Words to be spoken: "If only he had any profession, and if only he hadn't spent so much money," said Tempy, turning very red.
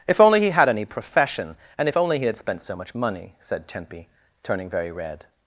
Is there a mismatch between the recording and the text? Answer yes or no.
yes